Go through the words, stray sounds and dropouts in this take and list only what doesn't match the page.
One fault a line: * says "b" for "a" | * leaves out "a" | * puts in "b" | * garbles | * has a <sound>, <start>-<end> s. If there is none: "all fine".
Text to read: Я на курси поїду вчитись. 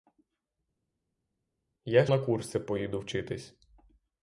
all fine